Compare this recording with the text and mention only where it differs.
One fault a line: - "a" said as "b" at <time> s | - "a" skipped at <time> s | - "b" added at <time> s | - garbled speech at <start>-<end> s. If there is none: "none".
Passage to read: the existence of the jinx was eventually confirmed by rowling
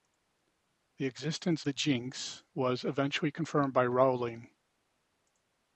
- "of" skipped at 1.6 s